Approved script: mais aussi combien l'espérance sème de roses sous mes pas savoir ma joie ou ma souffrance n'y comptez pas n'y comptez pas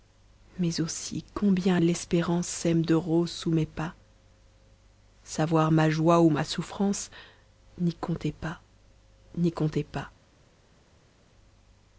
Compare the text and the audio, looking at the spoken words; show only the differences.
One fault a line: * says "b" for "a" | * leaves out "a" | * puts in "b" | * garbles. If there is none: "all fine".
all fine